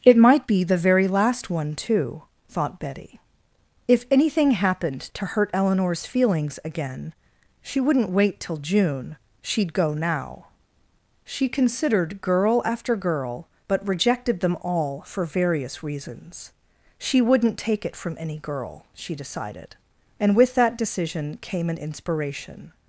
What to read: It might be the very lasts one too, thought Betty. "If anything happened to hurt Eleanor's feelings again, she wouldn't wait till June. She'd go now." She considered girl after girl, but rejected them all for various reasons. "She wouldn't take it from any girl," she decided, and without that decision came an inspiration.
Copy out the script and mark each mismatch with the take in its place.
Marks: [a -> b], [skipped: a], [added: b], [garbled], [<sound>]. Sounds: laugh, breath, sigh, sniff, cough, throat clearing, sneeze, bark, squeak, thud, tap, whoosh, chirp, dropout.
It might be the very [lasts -> last] one too, thought Betty. "If anything happened to hurt Eleanor's feelings again, she wouldn't wait till June. She'd go now." She considered girl after girl, but rejected them all for various reasons. "She wouldn't take it from any girl," she decided, and [without -> with] that decision came an inspiration.